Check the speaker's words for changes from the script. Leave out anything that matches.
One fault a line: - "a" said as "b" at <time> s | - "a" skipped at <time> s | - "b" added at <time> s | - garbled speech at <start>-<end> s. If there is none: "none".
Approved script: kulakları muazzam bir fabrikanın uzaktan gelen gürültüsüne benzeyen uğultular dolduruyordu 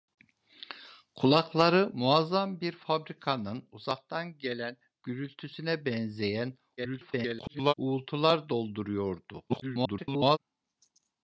- garbled speech at 6.8-7.7 s
- garbled speech at 9.5-10.4 s